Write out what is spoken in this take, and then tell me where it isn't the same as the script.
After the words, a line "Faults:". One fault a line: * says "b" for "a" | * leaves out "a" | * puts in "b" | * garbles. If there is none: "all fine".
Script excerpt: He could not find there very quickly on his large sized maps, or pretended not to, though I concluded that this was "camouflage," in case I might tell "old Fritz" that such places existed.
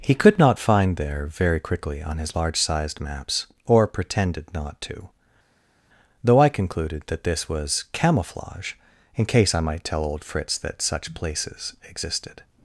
He could not find there very quickly on his large sized maps, or pretended not to, though I concluded that this was "camouflage," in case I might tell "old Fritz" that such places existed.
Faults:
all fine